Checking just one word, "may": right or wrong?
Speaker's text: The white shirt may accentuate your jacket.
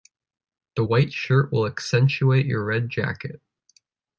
wrong